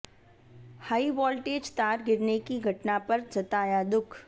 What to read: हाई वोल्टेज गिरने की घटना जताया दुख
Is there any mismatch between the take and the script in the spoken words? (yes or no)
yes